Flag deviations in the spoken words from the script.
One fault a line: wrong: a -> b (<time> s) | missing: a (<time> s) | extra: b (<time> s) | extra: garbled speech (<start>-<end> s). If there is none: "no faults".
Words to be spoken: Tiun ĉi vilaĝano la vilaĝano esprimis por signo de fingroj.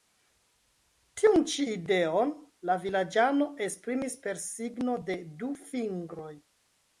wrong: vilaĝano -> ideon (1.7 s)
wrong: por -> per (4.2 s)
extra: du (5.4 s)